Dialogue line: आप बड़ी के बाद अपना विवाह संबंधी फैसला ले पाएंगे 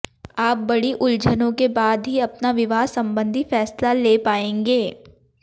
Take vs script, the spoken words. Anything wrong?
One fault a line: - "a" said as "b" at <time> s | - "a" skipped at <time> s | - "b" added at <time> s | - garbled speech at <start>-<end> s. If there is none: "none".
- "उलझनों" added at 0.9 s
- "ही" added at 2.1 s